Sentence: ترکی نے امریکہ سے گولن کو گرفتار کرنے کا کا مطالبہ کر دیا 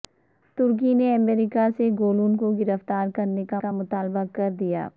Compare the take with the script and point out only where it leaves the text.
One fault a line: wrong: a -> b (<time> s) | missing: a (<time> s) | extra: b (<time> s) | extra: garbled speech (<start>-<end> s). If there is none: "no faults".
no faults